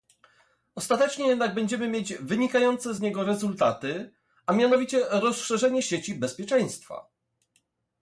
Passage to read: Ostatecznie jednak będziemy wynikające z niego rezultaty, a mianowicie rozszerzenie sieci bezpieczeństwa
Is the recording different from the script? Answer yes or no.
yes